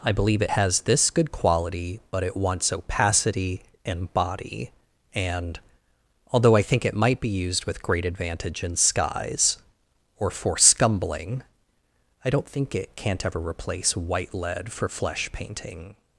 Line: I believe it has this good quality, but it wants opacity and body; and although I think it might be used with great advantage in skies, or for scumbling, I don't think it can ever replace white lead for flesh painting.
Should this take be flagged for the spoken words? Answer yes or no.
yes